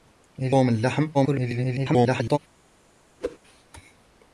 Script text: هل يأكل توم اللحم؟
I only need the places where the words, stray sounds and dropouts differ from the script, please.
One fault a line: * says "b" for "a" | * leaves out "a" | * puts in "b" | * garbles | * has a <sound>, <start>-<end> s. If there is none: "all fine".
* leaves out "يأكل"
* garbles
* has a whoosh, 3.2-3.4 s